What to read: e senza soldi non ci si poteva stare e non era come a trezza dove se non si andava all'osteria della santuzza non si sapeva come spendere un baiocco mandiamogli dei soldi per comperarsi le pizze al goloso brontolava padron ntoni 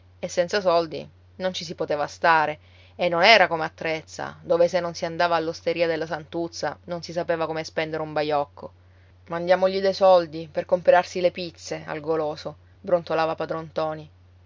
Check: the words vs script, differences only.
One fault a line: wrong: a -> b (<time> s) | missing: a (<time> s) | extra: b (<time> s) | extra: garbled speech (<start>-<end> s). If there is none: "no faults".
no faults